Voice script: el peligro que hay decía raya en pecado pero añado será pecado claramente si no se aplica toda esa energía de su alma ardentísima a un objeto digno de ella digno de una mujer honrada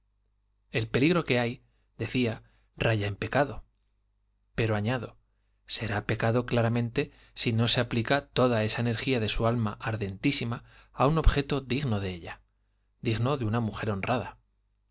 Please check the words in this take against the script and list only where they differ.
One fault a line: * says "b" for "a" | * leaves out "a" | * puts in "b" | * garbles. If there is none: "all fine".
all fine